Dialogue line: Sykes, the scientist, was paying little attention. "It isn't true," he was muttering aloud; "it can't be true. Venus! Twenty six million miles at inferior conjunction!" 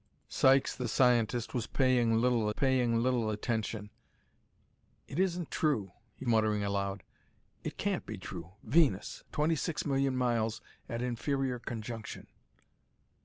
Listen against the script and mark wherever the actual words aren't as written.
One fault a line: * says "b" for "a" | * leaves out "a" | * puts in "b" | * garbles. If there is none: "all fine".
* puts in "paying little"
* leaves out "was"